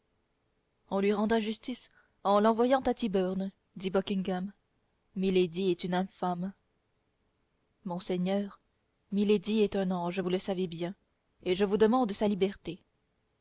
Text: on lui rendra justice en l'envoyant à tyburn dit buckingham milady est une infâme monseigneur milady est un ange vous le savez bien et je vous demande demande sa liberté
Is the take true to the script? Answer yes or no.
no